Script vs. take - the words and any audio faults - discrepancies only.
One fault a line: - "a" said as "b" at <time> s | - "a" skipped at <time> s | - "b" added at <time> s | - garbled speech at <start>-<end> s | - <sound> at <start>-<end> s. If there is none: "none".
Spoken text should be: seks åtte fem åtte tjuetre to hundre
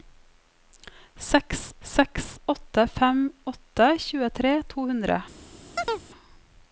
- "seks" added at 1.9 s
- chirp at 5.8-6.0 s